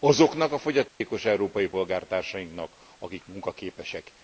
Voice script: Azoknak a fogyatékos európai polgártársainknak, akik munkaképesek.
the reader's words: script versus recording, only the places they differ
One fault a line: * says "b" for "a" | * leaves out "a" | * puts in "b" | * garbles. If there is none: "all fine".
all fine